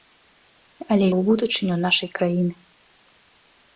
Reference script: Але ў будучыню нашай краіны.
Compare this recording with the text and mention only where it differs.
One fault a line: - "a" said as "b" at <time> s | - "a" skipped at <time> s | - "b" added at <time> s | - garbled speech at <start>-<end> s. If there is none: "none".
none